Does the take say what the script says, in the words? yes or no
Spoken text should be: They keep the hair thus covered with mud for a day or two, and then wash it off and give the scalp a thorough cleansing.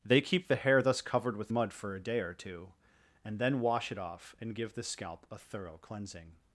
yes